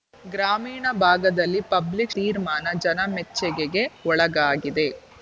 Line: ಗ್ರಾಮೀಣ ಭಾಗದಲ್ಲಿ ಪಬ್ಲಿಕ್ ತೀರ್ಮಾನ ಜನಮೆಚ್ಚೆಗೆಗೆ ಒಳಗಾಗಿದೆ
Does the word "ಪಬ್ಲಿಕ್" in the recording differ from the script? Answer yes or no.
no